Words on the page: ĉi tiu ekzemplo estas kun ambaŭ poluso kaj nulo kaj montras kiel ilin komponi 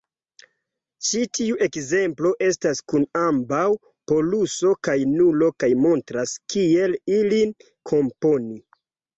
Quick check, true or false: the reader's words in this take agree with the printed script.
true